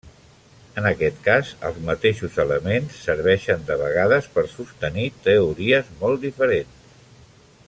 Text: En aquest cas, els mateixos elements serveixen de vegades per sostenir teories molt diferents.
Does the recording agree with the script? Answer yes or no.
yes